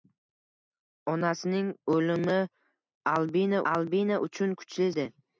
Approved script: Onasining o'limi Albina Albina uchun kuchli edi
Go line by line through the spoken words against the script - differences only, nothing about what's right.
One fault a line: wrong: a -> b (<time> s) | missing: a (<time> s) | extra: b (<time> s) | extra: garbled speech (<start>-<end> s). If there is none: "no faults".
no faults